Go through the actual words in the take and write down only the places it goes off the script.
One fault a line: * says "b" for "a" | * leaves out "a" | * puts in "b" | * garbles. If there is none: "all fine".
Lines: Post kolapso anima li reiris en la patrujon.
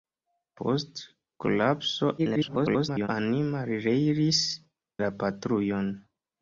* garbles
* leaves out "en"